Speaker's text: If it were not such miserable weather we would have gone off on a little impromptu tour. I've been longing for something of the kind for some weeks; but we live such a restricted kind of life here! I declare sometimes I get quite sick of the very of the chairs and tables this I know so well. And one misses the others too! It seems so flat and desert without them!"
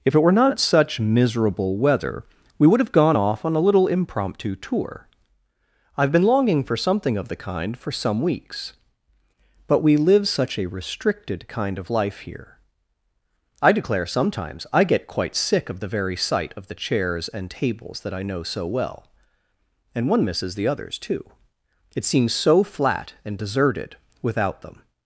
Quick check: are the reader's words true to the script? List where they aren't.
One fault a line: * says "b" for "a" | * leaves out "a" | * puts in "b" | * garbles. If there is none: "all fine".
* puts in "sight"
* says "that" for "this"
* says "deserted" for "desert"